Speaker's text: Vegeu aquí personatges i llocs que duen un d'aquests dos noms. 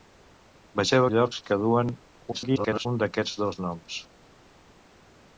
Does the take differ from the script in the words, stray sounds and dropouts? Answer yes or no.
yes